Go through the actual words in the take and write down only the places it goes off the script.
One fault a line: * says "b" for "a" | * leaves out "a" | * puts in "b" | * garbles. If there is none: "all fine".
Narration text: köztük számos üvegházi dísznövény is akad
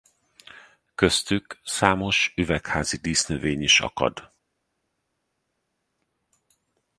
all fine